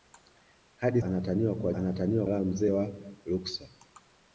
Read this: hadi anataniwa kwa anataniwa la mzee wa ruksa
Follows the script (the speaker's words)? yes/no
yes